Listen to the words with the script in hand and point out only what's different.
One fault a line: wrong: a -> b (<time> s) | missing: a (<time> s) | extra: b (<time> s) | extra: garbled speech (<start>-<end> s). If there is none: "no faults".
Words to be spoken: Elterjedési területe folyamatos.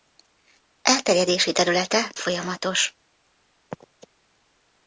no faults